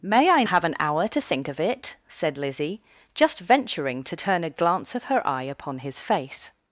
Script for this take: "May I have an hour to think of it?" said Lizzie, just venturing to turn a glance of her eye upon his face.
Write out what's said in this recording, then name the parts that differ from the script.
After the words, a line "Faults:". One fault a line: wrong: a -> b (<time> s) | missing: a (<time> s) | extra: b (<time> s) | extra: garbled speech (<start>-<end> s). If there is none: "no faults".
"May I have an hour to think of it?" said Lizzie, just venturing to turn a glance of her eye upon his face.
Faults:
no faults